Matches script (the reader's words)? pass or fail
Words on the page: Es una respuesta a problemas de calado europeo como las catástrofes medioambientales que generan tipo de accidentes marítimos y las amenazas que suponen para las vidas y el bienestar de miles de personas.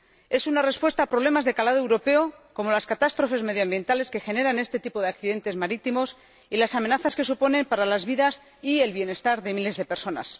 fail